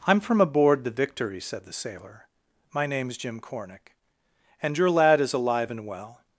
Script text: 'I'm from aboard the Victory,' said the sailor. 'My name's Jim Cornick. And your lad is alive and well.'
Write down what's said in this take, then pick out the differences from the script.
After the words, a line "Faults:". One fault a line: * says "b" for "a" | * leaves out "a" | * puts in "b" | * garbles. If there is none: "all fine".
'I'm from aboard the Victory,' said the sailor. 'My name's Jim Cornick. And your lad is alive and well.'
Faults:
all fine